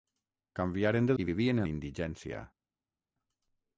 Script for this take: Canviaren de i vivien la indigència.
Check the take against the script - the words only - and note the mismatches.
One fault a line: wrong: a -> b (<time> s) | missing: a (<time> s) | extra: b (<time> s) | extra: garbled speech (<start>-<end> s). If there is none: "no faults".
no faults